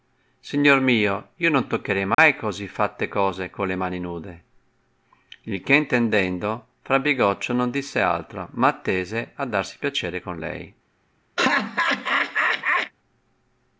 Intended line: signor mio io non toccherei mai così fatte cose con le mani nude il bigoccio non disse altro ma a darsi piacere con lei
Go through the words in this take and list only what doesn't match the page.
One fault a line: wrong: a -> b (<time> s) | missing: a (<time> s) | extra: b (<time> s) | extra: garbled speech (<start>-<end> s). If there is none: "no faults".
extra: che intendendo fra (5.6 s)
extra: attese (8.7 s)